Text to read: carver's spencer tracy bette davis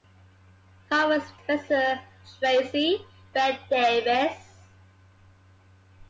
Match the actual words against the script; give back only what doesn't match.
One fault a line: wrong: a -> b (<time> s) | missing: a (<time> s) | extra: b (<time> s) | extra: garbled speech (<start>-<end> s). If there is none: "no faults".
no faults